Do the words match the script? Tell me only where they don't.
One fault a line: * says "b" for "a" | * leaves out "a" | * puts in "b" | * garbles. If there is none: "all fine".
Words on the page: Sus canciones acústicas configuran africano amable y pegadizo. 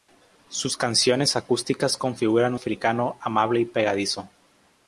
all fine